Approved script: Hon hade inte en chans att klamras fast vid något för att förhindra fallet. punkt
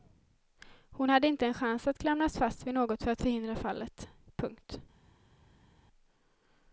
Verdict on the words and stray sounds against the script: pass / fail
pass